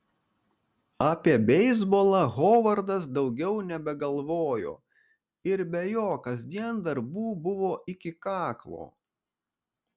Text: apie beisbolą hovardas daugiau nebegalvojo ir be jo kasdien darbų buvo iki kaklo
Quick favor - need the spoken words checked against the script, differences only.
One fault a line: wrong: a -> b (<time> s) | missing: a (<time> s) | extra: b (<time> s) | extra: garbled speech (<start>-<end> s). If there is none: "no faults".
no faults